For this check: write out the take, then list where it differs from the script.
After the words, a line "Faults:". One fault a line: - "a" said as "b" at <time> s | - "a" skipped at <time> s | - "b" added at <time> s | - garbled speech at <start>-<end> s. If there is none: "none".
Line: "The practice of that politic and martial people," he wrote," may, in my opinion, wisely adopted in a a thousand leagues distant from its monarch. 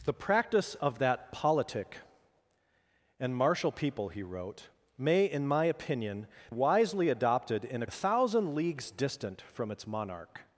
"The practice of that politic and martial people," he wrote," may, in my opinion, wisely adopted in a a thousand leagues distant from its monarch.
Faults:
none